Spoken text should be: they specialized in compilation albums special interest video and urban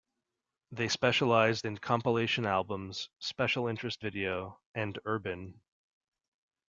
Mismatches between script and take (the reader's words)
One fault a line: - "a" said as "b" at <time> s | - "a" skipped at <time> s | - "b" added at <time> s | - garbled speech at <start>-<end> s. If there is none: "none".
none